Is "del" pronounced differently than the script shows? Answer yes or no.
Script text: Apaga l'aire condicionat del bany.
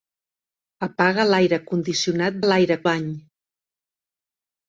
yes